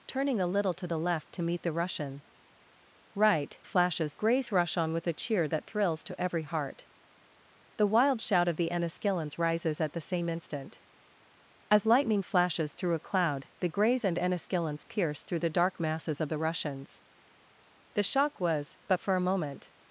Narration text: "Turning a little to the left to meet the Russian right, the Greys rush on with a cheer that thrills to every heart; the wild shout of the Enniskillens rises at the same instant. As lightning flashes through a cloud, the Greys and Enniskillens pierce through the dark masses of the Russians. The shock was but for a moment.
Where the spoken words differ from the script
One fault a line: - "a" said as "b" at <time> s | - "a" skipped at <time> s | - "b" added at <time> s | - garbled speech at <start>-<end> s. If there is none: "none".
- "the" said as "flashes" at 3.6 s